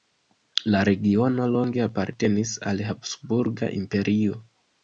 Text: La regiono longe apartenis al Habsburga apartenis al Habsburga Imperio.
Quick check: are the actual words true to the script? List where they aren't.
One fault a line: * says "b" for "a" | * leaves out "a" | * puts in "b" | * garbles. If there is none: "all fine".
* leaves out "apartenis al Habsburga"